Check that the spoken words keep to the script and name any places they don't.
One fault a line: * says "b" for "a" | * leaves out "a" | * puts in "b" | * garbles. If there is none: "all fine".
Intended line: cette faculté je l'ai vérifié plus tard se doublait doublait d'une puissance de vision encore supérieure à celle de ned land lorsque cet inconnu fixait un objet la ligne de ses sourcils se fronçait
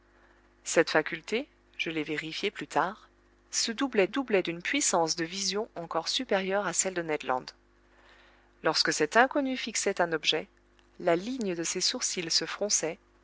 all fine